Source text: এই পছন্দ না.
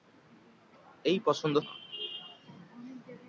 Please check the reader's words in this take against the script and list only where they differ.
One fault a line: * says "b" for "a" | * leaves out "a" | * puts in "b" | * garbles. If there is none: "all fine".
all fine